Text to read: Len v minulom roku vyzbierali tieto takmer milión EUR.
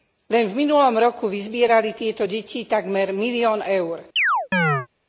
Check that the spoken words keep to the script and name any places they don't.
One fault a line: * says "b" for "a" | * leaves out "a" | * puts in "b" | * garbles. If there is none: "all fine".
* puts in "deti"